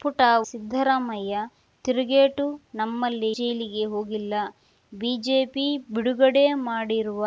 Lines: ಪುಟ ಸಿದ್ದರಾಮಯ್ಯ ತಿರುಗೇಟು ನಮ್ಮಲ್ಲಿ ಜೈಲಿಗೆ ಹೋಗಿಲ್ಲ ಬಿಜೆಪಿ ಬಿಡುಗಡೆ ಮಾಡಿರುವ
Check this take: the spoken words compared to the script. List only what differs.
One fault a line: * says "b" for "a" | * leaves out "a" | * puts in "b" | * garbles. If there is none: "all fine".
all fine